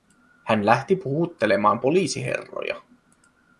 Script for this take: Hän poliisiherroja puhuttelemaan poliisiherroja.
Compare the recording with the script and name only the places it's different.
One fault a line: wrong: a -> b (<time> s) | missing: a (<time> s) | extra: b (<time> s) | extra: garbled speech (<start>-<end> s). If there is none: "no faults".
wrong: poliisiherroja -> lähti (0.7 s)